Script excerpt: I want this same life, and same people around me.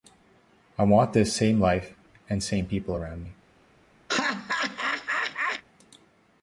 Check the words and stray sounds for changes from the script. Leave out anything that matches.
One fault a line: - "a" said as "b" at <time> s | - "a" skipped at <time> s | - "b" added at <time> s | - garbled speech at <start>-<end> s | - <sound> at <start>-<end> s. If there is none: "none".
- laugh at 4.1-5.6 s